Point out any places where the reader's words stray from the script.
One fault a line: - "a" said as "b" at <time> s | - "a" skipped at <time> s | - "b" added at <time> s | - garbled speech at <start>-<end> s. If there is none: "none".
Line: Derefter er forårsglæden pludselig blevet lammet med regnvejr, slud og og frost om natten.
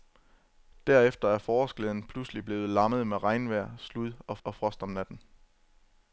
none